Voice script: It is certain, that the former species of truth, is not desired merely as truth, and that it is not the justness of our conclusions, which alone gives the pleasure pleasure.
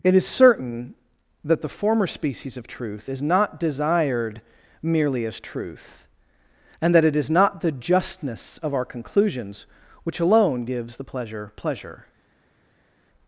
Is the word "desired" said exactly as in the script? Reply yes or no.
yes